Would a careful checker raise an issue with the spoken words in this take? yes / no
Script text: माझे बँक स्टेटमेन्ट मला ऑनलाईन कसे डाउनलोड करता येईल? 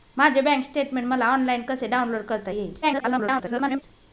yes